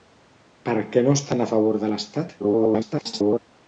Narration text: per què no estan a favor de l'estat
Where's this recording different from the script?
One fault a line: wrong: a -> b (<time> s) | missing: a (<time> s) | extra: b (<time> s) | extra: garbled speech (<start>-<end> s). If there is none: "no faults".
extra: garbled speech (2.4-3.4 s)